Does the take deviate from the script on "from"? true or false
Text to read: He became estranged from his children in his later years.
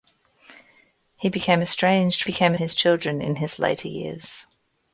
true